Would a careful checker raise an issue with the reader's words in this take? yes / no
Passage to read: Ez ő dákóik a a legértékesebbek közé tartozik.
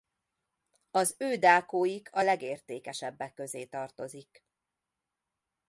yes